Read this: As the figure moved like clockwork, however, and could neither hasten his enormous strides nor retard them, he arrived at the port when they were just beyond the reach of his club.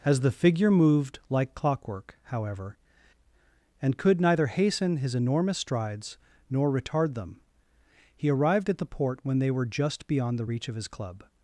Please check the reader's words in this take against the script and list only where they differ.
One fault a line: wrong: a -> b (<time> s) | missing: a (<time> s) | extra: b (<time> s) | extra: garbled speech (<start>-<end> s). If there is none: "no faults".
no faults